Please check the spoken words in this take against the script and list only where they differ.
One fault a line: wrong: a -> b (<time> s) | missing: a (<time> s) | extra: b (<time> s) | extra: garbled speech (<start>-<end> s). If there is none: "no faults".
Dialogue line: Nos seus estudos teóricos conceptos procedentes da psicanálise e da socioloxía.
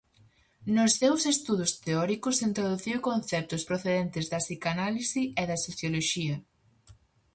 extra: introduciu (2.5 s)